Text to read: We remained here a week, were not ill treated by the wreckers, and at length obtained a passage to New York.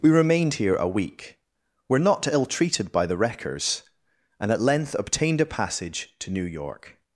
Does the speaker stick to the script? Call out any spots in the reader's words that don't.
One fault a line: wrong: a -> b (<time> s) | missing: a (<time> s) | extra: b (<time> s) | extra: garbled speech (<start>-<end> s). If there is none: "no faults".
no faults